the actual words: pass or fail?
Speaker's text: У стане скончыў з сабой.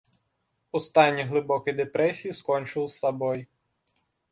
fail